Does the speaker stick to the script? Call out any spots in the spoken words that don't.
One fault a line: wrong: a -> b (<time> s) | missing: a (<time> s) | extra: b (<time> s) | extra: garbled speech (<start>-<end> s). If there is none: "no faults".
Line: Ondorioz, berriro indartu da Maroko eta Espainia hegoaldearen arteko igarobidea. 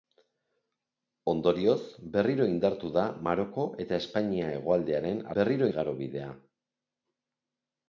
wrong: arteko -> berriro (5.4 s)